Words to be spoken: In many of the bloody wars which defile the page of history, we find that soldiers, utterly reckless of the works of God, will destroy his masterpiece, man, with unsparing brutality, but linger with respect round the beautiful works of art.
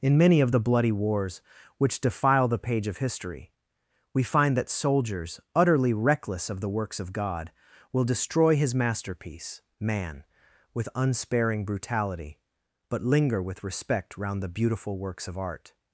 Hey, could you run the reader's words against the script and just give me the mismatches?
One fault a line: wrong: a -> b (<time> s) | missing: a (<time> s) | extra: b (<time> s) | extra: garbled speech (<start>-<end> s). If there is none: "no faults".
no faults